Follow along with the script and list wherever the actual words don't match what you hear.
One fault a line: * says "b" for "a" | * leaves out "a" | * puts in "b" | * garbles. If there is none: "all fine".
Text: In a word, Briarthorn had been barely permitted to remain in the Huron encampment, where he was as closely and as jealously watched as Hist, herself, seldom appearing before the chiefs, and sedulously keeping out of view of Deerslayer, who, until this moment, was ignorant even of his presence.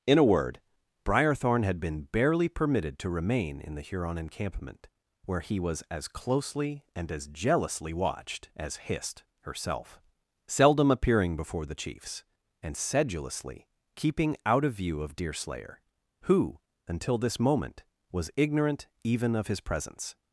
all fine